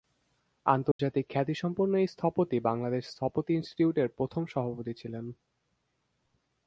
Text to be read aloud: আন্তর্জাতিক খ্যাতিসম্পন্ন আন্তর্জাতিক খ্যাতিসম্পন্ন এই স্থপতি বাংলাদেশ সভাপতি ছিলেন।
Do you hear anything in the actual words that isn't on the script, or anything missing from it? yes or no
yes